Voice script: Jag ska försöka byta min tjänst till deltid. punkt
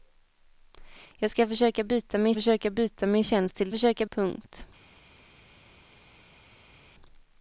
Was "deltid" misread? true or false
true